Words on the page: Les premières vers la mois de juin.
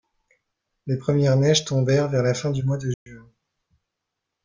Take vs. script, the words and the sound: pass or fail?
fail